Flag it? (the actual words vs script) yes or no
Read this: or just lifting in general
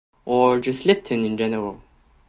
no